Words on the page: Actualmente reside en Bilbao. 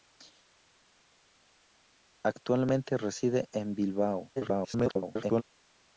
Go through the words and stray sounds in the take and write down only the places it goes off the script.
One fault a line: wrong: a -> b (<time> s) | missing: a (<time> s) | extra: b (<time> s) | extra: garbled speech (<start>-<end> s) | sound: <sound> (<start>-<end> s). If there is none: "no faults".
extra: garbled speech (4.4-5.4 s)